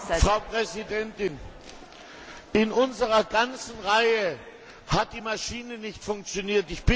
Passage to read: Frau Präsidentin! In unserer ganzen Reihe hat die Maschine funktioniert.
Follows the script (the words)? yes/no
no